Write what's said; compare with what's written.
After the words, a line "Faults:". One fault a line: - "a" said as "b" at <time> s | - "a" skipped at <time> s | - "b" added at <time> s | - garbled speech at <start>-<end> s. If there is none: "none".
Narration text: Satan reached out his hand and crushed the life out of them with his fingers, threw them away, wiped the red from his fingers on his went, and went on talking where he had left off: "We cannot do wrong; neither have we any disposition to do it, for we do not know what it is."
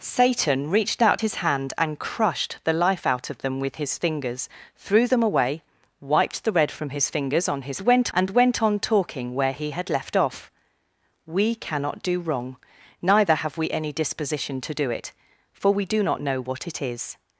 Satan reached out his hand and crushed the life out of them with his fingers, threw them away, wiped the red from his fingers on his went, and went on talking where he had left off: "We cannot do wrong; neither have we any disposition to do it, for we do not know what it is."
Faults:
none